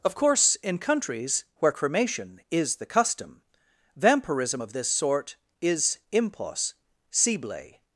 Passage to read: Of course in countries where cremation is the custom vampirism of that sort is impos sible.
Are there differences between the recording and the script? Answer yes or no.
yes